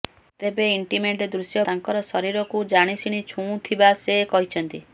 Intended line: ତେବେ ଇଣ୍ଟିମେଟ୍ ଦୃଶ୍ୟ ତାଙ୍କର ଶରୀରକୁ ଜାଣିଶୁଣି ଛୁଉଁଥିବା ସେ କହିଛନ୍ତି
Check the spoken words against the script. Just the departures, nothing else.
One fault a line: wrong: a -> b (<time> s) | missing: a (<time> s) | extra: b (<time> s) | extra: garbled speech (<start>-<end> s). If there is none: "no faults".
no faults